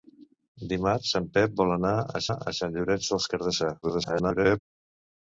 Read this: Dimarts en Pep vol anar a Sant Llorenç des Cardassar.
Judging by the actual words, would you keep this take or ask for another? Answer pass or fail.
fail